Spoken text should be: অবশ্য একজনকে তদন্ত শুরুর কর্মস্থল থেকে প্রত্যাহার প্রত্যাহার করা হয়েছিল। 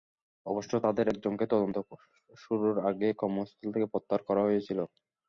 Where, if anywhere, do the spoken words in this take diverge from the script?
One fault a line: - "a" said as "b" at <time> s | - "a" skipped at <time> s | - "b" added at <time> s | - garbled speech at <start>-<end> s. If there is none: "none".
- "তাঁদের" added at 0.8 s
- "আগেই" added at 2.9 s
- "প্রত্যাহার" skipped at 4.2 s